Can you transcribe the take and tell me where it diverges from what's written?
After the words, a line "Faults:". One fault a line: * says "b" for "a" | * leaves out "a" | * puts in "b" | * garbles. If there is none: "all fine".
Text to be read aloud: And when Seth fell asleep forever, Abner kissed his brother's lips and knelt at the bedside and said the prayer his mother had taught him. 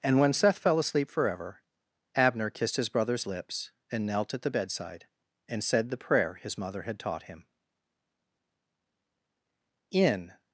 And when Seth fell asleep forever, Abner kissed his brother's lips and knelt at the bedside and said the prayer his mother had taught him. In
Faults:
* puts in "In"